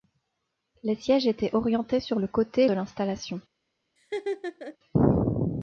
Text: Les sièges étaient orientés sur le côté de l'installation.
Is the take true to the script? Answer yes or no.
yes